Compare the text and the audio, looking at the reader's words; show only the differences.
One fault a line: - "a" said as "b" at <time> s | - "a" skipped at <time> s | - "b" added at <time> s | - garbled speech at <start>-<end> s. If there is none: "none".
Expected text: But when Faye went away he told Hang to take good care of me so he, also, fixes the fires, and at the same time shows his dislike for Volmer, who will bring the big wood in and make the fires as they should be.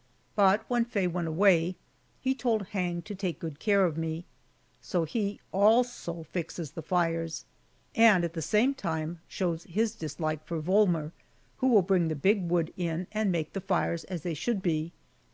none